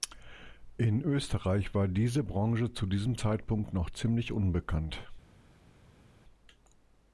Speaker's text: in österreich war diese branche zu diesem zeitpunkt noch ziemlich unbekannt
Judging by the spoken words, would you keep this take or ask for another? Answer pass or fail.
pass